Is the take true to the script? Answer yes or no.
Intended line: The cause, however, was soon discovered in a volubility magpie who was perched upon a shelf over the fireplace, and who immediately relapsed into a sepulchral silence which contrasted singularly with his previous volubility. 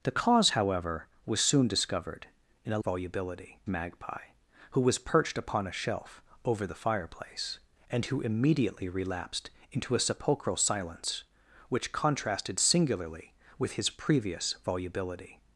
yes